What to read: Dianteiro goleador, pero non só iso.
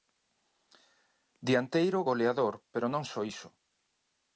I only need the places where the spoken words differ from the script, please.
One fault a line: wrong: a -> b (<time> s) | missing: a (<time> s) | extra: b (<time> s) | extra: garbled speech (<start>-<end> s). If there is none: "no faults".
no faults